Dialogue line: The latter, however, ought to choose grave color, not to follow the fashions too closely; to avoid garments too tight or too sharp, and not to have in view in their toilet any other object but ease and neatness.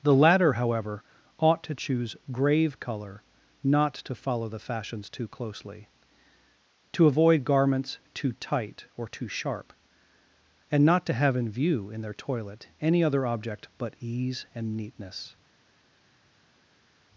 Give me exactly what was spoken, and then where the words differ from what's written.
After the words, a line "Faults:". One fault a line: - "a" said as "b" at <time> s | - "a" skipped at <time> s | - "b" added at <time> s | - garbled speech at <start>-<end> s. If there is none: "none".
The latter, however, ought to choose grave color, not to follow the fashions too closely; to avoid garments too tight or too sharp, and not to have in view in their toilet any other object but ease and neatness.
Faults:
none